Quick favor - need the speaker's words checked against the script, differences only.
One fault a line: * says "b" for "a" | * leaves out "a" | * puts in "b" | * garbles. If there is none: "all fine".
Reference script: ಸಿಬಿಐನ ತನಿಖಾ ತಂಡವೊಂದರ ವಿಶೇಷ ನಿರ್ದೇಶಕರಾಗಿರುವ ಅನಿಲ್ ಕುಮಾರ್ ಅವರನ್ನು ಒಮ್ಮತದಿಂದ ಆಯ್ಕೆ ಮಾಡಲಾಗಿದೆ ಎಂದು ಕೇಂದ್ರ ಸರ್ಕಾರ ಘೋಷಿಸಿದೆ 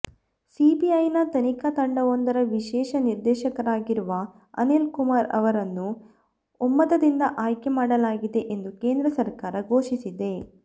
all fine